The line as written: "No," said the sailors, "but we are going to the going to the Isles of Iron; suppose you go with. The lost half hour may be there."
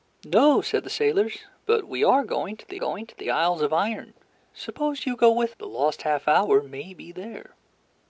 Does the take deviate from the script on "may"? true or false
false